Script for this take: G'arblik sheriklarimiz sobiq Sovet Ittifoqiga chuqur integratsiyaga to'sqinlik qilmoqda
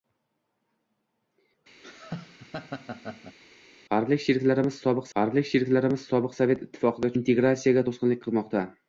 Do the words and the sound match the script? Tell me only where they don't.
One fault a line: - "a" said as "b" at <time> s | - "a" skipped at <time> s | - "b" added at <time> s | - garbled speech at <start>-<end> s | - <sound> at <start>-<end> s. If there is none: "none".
- laugh at 1.8-3.4 s
- "g'arblik sheriklarimiz sobiq" added at 5.2 s
- "chuqur" skipped at 7.1 s